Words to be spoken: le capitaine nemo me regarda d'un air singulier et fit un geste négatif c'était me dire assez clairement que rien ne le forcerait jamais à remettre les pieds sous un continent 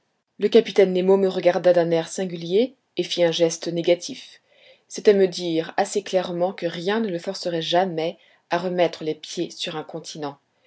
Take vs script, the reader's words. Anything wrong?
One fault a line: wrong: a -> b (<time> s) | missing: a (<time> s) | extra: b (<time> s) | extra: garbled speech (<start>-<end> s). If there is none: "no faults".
wrong: sous -> sur (9.5 s)